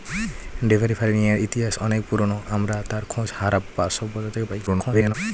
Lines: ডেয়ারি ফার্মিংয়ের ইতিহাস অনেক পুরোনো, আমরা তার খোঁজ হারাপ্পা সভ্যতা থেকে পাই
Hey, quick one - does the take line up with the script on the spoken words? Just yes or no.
no